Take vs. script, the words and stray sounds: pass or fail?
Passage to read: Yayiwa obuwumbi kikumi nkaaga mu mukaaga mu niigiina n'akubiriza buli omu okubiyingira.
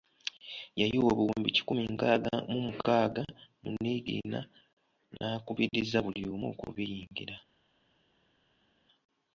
pass